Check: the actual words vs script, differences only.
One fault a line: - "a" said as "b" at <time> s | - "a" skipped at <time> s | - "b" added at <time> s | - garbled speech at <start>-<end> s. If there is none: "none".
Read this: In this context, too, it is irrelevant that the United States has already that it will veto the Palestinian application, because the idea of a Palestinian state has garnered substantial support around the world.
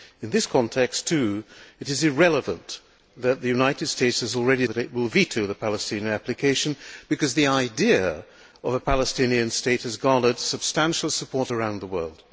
none